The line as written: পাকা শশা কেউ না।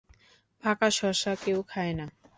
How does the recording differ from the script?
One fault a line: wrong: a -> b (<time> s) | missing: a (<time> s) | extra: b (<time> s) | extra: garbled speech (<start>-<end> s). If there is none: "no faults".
extra: খায় (1.7 s)